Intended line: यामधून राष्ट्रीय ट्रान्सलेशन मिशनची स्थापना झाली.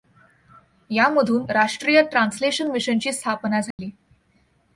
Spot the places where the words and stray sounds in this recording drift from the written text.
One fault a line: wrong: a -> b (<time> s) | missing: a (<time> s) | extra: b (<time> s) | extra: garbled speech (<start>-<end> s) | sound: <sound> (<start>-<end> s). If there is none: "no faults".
sound: dropout (3.7-3.8 s)